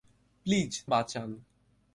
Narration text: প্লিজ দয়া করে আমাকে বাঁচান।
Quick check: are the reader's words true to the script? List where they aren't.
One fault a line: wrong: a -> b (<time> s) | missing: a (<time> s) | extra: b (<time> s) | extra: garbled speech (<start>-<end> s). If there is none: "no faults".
missing: দয়া করে আমাকে (0.7 s)